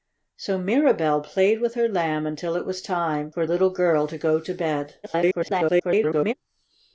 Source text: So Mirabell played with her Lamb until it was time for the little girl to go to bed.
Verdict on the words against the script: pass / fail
fail